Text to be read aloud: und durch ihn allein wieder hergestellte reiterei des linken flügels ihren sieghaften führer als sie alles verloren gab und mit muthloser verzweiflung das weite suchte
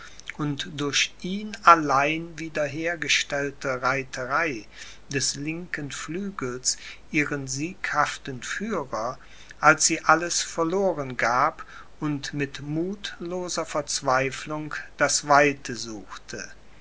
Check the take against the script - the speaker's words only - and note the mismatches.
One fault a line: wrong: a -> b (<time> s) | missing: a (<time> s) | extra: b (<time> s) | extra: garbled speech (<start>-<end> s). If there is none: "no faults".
no faults